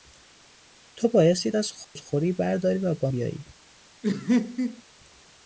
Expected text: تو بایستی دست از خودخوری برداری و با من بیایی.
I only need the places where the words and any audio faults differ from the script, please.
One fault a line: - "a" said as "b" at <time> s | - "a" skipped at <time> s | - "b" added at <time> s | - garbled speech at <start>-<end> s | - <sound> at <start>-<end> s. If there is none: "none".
- "دست" skipped at 1.5 s
- dropout at 1.8-2.0 s
- "من" skipped at 3.1 s
- laugh at 4.0-4.8 s